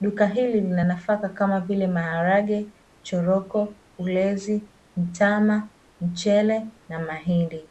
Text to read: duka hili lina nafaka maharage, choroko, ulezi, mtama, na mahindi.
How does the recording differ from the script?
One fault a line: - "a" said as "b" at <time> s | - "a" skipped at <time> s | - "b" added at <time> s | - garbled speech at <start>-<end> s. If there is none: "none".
- "kama vile" added at 1.3 s
- "mchele" added at 6.0 s